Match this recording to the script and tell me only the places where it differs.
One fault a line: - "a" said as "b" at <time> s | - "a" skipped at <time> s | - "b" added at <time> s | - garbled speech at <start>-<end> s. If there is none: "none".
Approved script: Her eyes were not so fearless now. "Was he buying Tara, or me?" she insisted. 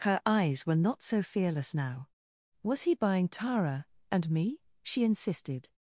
- "or" said as "and" at 4.1 s